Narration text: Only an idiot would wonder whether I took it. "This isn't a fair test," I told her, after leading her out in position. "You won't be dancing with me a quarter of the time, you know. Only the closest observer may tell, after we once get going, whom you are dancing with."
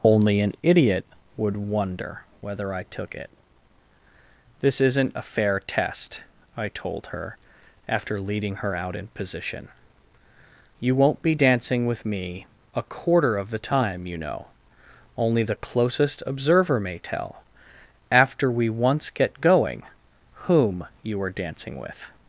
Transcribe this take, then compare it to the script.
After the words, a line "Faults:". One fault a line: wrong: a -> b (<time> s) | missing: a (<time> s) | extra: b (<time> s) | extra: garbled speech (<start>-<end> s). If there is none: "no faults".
Only an idiot would wonder whether I took it. "This isn't a fair test," I told her, after leading her out in position. "You won't be dancing with me a quarter of the time, you know. Only the closest observer may tell, after we once get going, whom you are dancing with."
Faults:
no faults